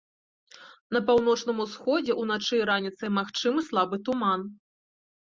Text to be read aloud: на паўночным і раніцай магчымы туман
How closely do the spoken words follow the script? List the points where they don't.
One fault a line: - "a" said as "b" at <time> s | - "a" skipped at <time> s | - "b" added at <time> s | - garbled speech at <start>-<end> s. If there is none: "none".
- "усходзе ўначы" added at 1.6 s
- "слабы" added at 3.7 s